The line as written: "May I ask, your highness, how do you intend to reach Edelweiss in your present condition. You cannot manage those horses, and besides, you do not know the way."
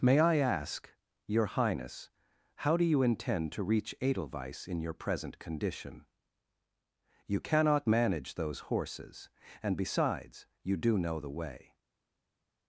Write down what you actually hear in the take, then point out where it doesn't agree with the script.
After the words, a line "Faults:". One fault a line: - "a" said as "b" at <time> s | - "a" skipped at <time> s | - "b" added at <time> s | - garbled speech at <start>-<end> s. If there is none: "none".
"May I ask, your highness, how do you intend to reach Edelweiss in your present condition. You cannot manage those horses, and besides, you do know the way."
Faults:
- "not" skipped at 11.0 s